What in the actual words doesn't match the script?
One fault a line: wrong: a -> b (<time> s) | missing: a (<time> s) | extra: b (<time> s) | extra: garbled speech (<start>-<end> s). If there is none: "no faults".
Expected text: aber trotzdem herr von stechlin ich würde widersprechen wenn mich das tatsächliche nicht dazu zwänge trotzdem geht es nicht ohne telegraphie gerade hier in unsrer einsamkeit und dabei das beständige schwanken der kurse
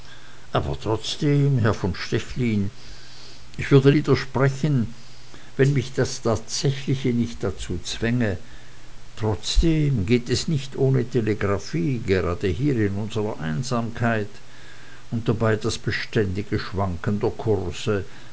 no faults